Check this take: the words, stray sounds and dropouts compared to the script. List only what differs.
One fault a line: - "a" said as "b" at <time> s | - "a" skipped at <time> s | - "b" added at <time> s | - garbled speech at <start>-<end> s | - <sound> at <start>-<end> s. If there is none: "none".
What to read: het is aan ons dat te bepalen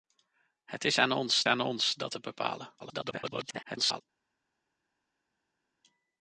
- "aan ons" added at 1.5 s
- garbled speech at 2.8-4.0 s